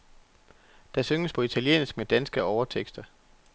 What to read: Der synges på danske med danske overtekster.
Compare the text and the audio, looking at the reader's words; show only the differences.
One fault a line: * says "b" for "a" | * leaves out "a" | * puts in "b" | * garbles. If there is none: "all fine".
* says "italiensk" for "danske"